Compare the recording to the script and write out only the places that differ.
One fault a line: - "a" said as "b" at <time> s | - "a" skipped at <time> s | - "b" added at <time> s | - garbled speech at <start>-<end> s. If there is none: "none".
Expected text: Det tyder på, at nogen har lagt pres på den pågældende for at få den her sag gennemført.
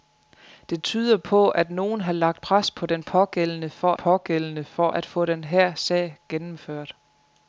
- "pågældende for" added at 3.9 s